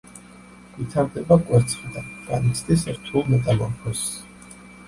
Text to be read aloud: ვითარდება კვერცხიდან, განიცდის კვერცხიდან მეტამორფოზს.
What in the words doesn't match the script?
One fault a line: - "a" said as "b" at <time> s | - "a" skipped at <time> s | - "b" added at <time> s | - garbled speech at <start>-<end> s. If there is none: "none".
- "კვერცხიდან" said as "რთულ" at 3.0 s